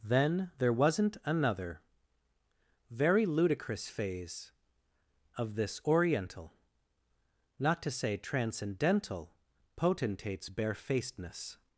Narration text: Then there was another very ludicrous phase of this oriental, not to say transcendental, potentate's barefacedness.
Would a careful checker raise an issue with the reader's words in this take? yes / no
yes